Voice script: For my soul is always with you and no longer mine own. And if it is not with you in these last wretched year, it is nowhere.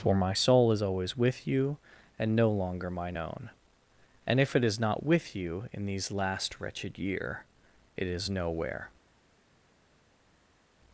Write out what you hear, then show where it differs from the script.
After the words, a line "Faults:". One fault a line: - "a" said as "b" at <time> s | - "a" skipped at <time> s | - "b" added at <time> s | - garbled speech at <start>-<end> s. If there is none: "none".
For my soul is always with you and no longer mine own. And if it is not with you in these last wretched year, it is nowhere.
Faults:
none